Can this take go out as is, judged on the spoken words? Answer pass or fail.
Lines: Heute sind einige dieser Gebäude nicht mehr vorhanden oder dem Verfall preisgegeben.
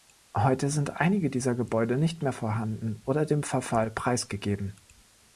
pass